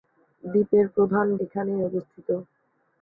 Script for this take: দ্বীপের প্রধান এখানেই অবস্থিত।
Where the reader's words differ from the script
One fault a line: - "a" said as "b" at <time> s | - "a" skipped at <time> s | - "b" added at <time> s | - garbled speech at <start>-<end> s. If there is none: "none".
none